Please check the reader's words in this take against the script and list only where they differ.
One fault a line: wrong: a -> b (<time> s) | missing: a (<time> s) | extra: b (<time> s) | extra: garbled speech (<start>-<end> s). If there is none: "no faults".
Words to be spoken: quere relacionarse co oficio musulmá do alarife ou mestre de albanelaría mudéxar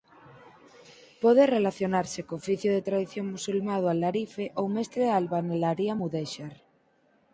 wrong: quere -> pode (1.2 s)
extra: de tradición (2.7 s)